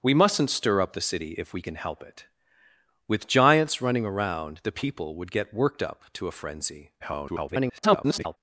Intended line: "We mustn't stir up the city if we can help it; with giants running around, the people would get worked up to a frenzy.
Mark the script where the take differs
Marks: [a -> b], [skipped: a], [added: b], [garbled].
"We mustn't stir up the city if we can help it; with giants running around, the people would get worked up to a frenzy. [garbled]